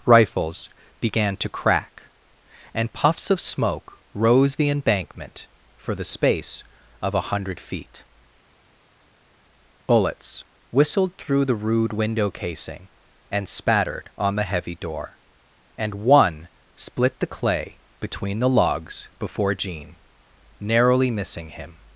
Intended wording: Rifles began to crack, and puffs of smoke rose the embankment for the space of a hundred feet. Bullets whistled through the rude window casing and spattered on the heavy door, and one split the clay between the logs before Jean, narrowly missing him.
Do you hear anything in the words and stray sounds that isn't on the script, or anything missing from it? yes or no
no